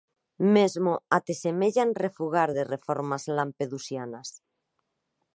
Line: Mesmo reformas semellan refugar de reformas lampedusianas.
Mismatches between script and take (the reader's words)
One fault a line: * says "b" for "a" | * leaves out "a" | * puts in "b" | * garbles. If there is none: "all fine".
* says "até" for "reformas"